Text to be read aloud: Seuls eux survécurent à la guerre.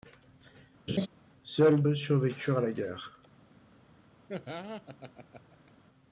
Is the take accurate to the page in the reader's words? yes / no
yes